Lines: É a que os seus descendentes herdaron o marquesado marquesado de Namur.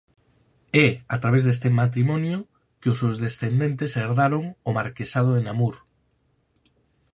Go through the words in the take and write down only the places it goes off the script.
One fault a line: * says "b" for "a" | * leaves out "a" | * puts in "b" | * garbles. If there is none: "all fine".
* puts in "través deste matrimonio"
* leaves out "marquesado"